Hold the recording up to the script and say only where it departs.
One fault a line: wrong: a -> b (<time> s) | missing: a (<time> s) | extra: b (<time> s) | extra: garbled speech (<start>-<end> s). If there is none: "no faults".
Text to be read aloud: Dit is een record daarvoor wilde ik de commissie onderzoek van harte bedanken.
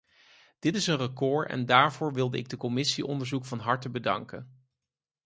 extra: en (1.5 s)